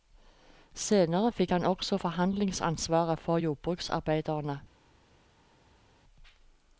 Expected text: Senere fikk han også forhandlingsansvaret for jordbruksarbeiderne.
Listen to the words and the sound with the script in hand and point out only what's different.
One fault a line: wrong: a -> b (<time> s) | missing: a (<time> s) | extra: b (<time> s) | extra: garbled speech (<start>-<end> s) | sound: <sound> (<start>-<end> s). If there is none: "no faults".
no faults